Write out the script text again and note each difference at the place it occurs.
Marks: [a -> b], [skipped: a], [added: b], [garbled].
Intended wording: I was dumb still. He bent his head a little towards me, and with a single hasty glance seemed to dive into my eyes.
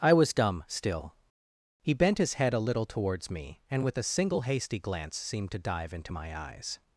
I was dumb still. He bent his head a little towards me, and with a single hasty glance seemed to dive into my eyes.